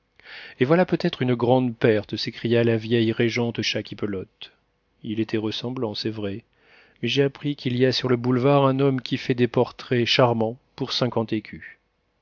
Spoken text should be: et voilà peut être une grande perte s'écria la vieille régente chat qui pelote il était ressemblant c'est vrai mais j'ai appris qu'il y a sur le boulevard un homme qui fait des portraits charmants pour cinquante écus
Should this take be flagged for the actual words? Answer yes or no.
no